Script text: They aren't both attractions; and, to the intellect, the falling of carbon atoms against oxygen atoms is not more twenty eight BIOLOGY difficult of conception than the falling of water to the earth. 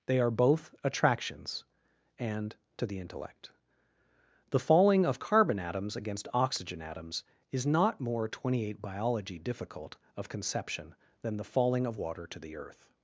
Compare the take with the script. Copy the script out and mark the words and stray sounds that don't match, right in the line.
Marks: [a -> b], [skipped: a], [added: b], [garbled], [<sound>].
They [aren't -> are] both attractions; and, to the intellect, the falling of carbon atoms against oxygen atoms is not more twenty eight BIOLOGY difficult of conception than the falling of water to the earth.